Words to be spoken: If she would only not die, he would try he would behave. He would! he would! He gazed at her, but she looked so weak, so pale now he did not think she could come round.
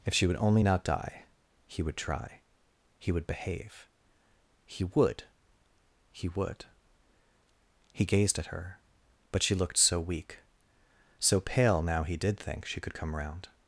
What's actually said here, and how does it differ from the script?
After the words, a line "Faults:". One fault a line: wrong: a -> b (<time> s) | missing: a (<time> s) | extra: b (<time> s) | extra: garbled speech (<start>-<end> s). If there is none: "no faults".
If she would only not die, he would try he would behave. He would! he would! He gazed at her, but she looked so weak, so pale now he did think she could come round.
Faults:
missing: not (12.4 s)